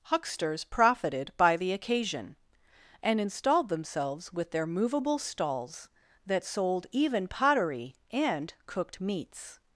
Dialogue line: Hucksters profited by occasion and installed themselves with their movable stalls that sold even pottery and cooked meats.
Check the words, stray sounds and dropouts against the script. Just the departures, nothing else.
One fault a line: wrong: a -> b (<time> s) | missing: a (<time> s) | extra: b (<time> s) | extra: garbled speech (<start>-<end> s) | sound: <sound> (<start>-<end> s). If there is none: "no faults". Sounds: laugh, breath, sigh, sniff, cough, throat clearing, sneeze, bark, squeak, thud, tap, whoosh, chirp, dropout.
extra: the (1.6 s)